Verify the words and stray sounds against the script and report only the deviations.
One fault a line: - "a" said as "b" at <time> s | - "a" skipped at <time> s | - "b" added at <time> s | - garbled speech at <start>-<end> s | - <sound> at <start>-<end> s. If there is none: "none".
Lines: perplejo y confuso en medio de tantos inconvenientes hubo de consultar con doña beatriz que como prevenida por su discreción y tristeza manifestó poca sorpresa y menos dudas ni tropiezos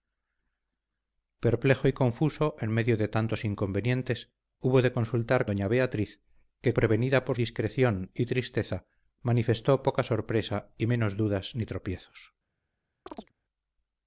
- "con" skipped at 5.5 s
- "como" skipped at 6.7 s
- "su" skipped at 7.4 s
- chirp at 13.1-13.3 s